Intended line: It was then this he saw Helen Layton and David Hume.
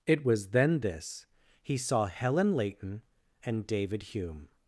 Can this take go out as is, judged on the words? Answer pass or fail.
pass